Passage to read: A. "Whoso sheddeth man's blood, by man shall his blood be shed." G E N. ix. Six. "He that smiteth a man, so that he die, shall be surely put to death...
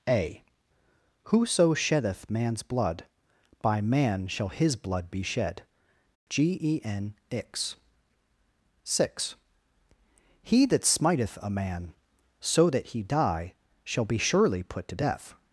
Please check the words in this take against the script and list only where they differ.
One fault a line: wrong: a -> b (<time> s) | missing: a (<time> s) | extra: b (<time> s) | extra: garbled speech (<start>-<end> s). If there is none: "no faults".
no faults